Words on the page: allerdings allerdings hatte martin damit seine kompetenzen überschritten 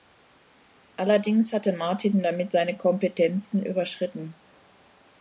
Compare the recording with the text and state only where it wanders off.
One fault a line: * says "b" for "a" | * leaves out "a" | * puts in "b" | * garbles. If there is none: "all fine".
* leaves out "allerdings"